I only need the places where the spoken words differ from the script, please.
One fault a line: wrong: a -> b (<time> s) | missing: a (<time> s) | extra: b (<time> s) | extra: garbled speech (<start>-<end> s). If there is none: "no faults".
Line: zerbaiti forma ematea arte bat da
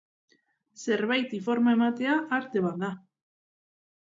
no faults